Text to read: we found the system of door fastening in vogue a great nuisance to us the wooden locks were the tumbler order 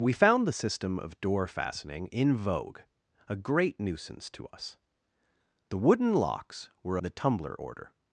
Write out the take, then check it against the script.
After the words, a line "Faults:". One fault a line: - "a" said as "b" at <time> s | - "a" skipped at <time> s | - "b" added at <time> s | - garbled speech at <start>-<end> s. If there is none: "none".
we found the system of door fastening in vogue a great nuisance to us the wooden locks were the tumbler order
Faults:
none